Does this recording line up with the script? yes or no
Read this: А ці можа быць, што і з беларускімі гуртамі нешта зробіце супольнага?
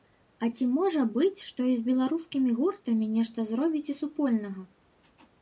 yes